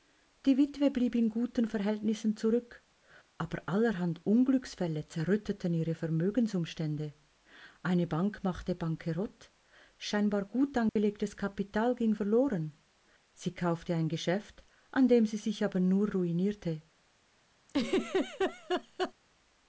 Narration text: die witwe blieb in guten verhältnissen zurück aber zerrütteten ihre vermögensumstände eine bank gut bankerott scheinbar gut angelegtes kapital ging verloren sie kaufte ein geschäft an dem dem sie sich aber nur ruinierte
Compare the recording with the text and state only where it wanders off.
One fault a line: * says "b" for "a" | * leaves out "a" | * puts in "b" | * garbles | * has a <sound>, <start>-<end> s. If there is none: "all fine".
* puts in "allerhand unglücksfälle"
* says "machte" for "gut"
* has a dropout, 10.9-11.0 s
* leaves out "dem"
* has a laugh, 17.7-19.1 s